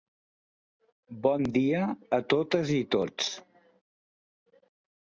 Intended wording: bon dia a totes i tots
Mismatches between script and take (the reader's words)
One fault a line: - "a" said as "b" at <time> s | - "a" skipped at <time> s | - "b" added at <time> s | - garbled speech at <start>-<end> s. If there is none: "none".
none